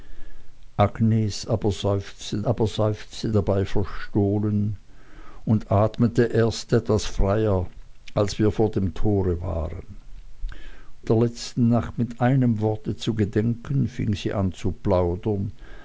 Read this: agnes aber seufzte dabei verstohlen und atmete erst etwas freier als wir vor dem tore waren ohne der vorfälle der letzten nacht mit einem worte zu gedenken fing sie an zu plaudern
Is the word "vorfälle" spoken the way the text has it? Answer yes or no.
no